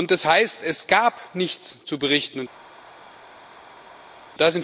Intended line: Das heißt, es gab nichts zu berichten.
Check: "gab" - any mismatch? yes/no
no